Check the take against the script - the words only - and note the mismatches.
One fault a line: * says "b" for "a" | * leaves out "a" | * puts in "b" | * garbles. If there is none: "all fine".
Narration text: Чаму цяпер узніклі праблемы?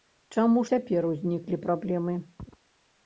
all fine